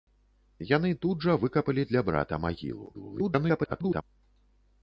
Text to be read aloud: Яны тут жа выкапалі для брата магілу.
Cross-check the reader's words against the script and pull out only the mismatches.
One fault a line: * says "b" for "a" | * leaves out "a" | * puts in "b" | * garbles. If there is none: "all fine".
* garbles